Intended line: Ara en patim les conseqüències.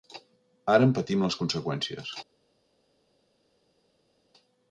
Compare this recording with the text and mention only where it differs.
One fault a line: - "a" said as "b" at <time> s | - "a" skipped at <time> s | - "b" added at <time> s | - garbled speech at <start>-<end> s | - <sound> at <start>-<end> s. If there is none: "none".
none